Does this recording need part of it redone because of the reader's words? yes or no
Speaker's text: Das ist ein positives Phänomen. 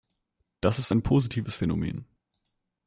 no